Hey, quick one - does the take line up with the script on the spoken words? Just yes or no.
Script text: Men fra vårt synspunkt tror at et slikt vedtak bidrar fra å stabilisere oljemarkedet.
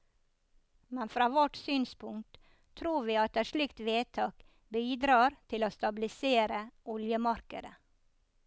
no